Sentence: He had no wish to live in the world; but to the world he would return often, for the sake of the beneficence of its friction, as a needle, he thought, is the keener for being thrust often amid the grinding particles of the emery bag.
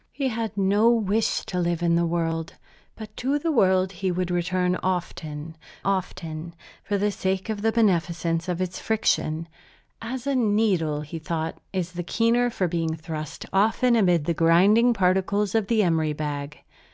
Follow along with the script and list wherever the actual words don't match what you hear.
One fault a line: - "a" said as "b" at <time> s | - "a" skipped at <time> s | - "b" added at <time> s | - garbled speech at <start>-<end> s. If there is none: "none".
- "often" added at 5.8 s